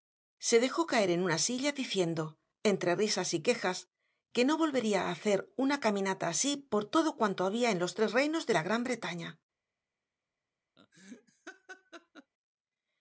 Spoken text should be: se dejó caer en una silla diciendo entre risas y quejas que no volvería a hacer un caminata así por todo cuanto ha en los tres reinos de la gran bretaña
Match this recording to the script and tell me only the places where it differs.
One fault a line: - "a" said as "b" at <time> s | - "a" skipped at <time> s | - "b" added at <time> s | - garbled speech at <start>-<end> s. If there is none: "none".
- "un" said as "una" at 5.6 s
- "ha" said as "había" at 7.5 s